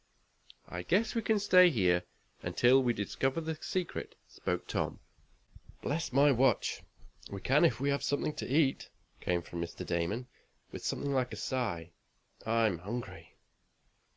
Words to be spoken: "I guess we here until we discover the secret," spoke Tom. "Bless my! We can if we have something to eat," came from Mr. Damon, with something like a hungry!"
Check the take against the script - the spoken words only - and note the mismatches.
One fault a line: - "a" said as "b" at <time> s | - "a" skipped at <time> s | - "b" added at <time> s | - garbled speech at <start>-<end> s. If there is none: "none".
- "can stay" added at 1.2 s
- "watch" added at 6.3 s
- "sigh I'm" added at 11.3 s